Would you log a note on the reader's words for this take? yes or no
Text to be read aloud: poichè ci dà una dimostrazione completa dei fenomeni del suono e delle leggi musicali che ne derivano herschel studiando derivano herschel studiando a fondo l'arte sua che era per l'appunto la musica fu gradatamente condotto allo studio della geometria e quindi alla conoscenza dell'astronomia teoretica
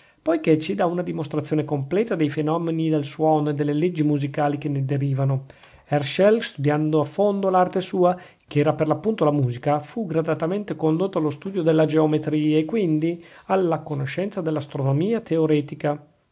yes